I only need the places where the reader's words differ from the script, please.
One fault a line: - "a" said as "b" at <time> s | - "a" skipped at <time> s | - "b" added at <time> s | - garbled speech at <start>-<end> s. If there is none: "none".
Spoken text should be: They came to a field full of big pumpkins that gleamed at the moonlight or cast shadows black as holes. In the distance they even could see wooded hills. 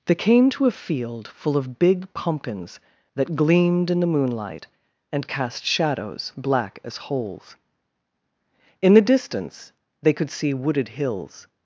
- "at" said as "in" at 3.9 s
- "or" said as "and" at 5.1 s
- "even" skipped at 10.1 s